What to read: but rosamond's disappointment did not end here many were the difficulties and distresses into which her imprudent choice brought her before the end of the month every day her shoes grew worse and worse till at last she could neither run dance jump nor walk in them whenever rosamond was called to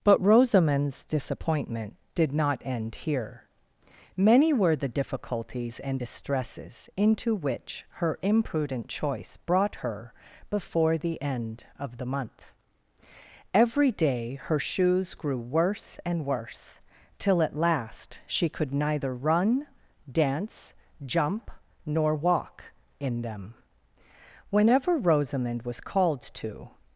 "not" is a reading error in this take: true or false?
false